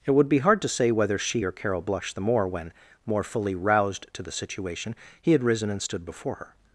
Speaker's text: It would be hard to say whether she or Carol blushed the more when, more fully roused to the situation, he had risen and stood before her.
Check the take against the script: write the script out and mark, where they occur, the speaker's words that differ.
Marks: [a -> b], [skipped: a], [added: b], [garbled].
It would be hard to say whether she or Carol blushed the more when, more fully roused to the situation, he had risen and stood before her.